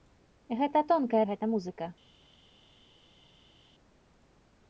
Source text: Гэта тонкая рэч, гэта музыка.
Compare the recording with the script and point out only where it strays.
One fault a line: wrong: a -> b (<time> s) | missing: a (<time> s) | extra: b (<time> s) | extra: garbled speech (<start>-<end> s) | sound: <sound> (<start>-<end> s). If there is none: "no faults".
missing: рэч (1.2 s)